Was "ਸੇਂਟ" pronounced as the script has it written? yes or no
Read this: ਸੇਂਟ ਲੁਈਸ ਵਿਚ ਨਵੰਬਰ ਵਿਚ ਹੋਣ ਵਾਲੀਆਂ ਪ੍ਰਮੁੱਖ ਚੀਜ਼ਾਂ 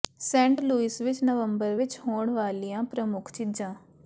yes